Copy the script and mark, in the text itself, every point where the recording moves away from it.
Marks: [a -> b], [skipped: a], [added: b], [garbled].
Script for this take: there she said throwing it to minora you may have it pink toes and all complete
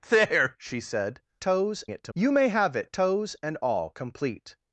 there she said [throwing -> toes] it to [skipped: minora] you may have it [skipped: pink] toes and all complete